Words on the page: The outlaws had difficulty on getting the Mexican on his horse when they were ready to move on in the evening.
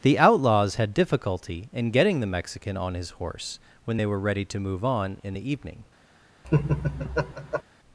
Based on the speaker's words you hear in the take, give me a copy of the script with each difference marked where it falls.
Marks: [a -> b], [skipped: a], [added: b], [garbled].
The outlaws had difficulty [on -> in] getting the Mexican on his horse when they were ready to move on in the evening.